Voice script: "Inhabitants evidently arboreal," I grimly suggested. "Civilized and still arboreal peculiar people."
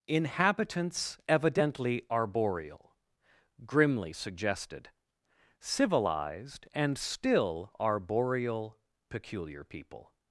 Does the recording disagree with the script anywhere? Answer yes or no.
yes